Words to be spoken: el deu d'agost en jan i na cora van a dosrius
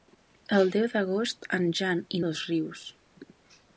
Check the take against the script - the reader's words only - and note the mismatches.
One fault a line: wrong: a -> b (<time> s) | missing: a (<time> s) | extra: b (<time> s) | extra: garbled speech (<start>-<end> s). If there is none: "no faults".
missing: na cora van (2.2 s)